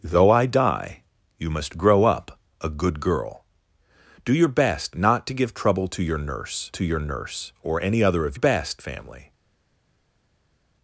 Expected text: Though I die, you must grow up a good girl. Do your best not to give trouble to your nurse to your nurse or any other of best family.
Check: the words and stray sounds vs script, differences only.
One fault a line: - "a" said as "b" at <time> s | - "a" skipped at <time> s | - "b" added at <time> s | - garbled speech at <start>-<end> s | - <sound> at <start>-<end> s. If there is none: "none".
none